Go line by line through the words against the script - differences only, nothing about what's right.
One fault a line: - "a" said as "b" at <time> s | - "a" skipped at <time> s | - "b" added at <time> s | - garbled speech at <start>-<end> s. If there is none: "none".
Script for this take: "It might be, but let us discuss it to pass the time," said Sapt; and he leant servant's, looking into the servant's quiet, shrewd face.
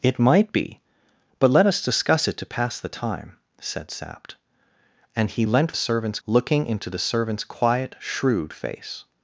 none